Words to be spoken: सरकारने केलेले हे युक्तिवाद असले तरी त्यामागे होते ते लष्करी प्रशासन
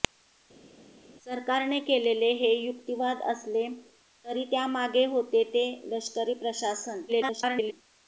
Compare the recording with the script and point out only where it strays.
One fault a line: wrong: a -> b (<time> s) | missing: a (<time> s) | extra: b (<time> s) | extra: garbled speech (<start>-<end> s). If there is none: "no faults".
extra: garbled speech (7.1-7.7 s)